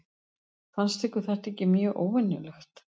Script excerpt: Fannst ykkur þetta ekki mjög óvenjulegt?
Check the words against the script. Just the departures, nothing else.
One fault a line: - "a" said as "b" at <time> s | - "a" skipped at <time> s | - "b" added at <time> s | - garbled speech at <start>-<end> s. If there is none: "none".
none